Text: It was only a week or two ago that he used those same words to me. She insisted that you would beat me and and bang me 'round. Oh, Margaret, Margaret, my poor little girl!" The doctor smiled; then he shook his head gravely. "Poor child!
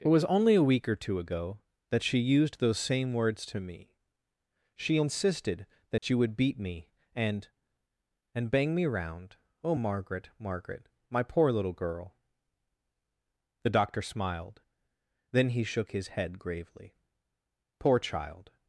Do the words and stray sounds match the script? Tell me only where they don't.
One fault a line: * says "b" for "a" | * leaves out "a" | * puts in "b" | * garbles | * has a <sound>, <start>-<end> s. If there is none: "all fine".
* says "she" for "he"
* has a dropout, 6.0-6.0 s